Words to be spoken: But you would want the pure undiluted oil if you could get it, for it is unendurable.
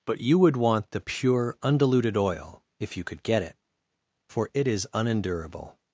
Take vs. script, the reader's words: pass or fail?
pass